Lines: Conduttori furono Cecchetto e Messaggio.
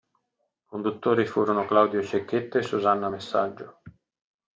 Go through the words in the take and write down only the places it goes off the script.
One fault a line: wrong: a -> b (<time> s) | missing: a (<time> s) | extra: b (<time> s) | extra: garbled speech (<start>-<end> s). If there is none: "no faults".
extra: Claudio (1.6 s)
extra: Susanna (2.6 s)